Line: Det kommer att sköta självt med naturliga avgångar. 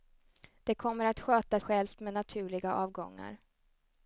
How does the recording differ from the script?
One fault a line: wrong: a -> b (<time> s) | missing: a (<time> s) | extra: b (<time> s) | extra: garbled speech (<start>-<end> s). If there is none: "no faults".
no faults